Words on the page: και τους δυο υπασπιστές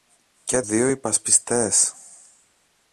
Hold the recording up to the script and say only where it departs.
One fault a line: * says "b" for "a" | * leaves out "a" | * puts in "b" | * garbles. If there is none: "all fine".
* leaves out "τους"